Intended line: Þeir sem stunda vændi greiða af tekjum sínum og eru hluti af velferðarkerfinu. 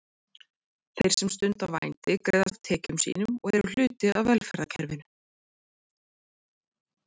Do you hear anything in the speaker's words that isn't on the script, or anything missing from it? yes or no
no